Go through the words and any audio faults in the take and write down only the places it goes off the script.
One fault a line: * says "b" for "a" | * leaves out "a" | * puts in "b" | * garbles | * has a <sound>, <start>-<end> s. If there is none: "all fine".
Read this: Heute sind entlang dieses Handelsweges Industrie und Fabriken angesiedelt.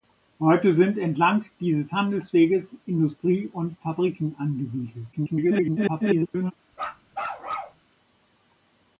* garbles
* has a bark, 6.7-7.8 s